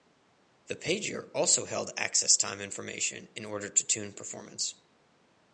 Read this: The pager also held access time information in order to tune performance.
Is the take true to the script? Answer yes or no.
yes